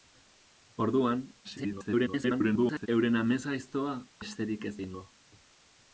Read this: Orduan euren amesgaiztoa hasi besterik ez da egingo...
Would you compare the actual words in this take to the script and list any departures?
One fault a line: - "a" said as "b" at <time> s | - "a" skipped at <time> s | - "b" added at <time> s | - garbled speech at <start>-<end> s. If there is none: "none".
- garbled speech at 1.4-2.9 s
- "hasi" skipped at 4.0 s
- "da" skipped at 4.8 s